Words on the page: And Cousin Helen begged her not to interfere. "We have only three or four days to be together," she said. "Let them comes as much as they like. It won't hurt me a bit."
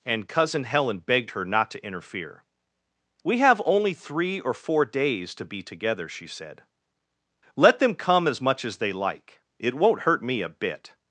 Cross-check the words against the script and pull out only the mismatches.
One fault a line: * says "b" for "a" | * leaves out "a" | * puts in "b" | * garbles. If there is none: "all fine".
* says "come" for "comes"